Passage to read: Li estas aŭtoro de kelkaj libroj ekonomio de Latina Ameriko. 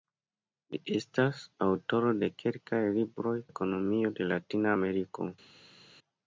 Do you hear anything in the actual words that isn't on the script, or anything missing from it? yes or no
no